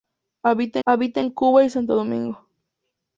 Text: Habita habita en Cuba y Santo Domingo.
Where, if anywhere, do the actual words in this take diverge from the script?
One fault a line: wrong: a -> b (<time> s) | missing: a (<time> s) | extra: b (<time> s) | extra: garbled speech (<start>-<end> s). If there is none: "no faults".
no faults